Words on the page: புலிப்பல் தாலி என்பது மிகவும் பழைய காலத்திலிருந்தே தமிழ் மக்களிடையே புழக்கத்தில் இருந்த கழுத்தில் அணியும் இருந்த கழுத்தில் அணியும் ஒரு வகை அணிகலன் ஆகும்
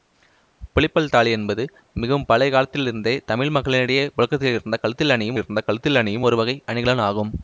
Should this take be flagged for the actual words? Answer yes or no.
no